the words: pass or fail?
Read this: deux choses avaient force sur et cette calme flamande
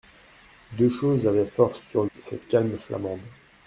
pass